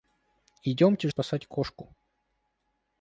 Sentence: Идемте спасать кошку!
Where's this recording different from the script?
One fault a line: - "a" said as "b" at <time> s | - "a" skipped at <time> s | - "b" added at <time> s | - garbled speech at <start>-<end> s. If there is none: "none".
none